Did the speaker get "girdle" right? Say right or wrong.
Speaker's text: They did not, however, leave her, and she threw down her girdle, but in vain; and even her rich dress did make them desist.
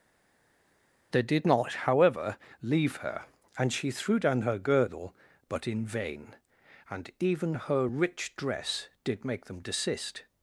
right